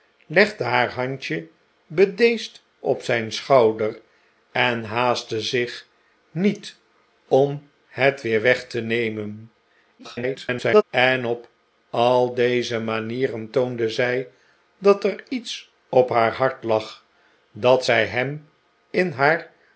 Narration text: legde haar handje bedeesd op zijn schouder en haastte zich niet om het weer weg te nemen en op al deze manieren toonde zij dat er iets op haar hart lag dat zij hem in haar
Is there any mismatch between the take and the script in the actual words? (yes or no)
yes